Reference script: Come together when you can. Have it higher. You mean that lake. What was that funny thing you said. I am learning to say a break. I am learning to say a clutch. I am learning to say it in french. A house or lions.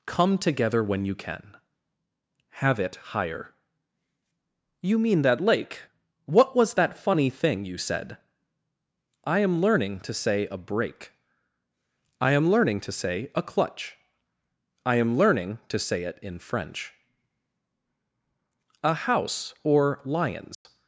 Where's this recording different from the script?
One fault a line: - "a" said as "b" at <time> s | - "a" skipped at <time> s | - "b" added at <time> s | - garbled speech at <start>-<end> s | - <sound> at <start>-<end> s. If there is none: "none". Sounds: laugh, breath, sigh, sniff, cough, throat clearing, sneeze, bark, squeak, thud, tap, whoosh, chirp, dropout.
- dropout at 20.5-20.7 s